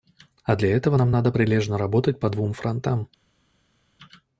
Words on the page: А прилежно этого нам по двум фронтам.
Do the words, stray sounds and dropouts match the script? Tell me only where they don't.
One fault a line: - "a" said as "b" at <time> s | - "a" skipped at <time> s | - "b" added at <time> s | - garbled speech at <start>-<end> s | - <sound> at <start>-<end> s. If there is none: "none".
- "прилежно" said as "для" at 0.6 s
- "надо прилежно работать" added at 1.1 s